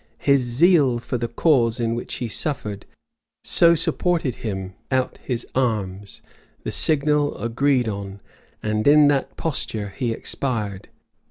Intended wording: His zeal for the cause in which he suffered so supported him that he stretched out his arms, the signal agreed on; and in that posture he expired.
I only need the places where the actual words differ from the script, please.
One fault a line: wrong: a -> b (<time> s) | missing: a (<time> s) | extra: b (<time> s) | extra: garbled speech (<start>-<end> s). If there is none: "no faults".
missing: that he stretched (4.7 s)